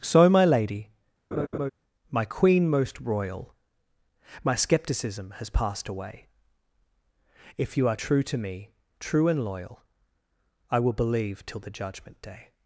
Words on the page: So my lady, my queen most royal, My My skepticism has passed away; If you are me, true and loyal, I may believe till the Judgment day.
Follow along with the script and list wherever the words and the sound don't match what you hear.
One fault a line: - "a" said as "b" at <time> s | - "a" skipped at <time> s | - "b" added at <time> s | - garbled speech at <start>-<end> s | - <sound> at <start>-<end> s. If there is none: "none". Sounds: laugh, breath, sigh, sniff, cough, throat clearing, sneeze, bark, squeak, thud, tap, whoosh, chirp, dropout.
- laugh at 1.3-1.7 s
- "My" skipped at 4.5 s
- "true to" added at 7.9 s
- "may" said as "will" at 10.8 s